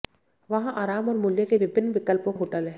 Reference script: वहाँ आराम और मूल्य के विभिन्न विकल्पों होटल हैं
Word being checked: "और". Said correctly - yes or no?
yes